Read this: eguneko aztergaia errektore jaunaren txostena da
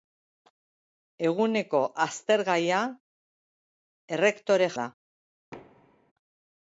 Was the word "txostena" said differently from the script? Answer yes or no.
yes